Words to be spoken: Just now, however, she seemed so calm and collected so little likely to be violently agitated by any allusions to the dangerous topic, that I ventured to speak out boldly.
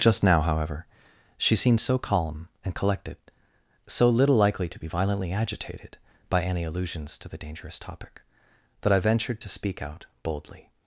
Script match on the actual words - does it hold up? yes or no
yes